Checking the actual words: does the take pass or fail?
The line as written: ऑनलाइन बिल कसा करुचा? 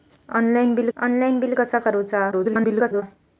fail